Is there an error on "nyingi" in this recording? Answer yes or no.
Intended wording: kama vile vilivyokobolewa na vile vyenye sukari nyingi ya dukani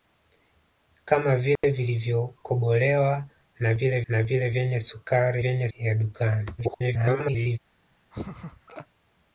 yes